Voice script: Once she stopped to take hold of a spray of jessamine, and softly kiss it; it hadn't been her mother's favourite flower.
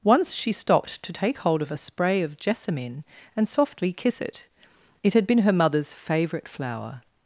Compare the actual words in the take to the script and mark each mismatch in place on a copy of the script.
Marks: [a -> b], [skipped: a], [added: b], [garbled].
Once she stopped to take hold of a spray of jessamine, and softly kiss it; it [hadn't -> had] been her mother's favourite flower.